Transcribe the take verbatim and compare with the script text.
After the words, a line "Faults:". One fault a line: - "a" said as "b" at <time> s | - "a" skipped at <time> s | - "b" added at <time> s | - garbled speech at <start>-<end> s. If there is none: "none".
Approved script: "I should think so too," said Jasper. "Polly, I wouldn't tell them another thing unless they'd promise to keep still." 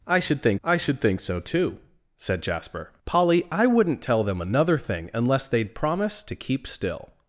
"I should think I should think so too," said Jasper. "Polly, I wouldn't tell them another thing unless they'd promise to keep still."
Faults:
- "I should think" added at 0.6 s